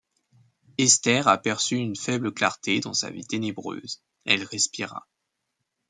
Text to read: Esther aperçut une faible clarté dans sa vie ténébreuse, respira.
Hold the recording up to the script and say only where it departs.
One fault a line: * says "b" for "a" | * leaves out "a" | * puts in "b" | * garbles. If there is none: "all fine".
* puts in "elle"